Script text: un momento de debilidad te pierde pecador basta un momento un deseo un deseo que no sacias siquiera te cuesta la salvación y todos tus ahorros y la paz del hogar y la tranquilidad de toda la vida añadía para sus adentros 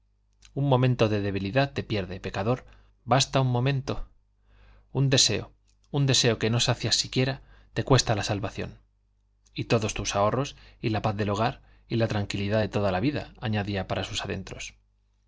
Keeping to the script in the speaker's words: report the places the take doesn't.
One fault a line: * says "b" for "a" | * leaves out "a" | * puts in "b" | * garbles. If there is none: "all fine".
all fine